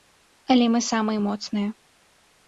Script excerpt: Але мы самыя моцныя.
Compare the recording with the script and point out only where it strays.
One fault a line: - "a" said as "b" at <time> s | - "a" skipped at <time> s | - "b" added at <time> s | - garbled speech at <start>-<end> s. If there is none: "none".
none